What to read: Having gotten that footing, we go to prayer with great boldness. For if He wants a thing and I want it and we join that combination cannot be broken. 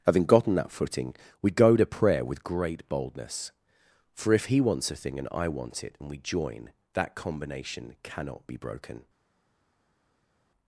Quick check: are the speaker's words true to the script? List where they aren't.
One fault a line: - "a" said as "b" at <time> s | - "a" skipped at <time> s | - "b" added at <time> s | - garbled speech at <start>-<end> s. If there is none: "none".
none